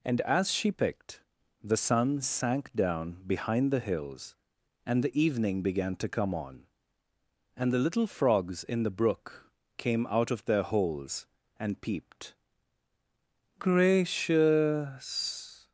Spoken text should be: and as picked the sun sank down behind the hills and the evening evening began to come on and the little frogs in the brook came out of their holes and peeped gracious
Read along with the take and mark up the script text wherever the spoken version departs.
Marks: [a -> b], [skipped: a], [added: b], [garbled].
and as [added: she] picked the sun sank down behind the hills and the evening [skipped: evening] began to come on and the little frogs in the brook came out of their holes and peeped gracious